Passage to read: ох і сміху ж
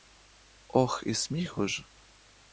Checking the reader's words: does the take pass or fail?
pass